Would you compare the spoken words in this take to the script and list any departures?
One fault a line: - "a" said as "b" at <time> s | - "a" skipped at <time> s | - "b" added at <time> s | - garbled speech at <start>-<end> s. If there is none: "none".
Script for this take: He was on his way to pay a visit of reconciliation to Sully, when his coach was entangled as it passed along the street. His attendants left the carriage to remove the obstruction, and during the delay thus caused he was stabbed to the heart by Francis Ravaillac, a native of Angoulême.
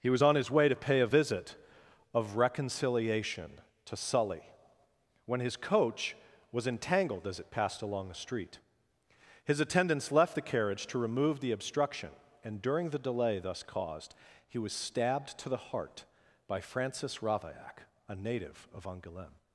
none